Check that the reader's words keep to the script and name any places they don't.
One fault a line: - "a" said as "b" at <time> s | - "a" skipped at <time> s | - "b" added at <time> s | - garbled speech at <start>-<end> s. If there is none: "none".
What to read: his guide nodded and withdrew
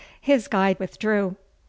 - "nodded and" skipped at 0.8 s